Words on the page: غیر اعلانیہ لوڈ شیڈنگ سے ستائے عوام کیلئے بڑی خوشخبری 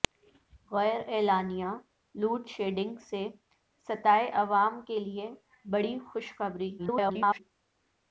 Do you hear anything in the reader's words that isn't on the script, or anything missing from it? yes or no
yes